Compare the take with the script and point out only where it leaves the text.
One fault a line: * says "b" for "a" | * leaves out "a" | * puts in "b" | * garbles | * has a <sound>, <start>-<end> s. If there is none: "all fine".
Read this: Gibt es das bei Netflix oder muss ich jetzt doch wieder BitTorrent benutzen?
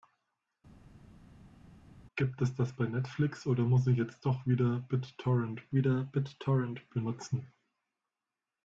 * puts in "wieder BitTorrent"